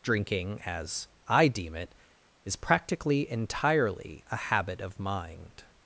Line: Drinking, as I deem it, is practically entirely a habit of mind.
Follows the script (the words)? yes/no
yes